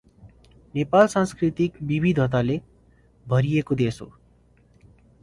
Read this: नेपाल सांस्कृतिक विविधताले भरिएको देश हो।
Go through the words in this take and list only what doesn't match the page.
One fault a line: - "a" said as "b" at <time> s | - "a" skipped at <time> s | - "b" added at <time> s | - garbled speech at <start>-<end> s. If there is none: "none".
none